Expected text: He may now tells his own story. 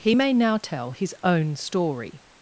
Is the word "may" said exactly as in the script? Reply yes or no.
yes